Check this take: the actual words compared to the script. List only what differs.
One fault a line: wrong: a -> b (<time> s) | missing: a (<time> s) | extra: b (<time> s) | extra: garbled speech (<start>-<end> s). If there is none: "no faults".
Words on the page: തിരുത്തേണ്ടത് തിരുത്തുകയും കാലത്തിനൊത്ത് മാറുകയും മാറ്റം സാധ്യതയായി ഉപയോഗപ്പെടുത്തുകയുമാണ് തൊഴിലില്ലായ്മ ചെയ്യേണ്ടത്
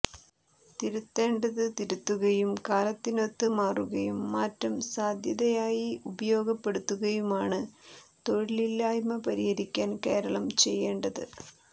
extra: പരിഹരിക്കാൻ കേരളം (9.3 s)